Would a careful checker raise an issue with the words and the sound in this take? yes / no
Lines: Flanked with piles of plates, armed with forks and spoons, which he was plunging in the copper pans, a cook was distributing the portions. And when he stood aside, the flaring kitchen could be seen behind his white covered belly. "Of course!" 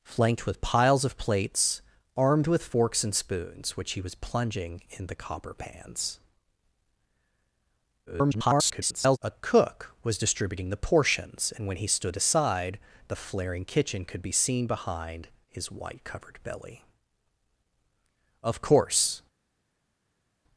yes